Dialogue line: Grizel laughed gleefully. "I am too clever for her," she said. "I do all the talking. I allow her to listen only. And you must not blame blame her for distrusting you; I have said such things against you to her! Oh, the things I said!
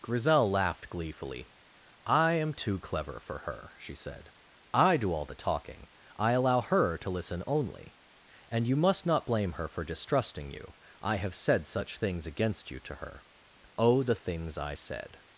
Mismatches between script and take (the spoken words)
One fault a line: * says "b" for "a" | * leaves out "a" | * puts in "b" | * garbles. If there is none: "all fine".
* leaves out "blame"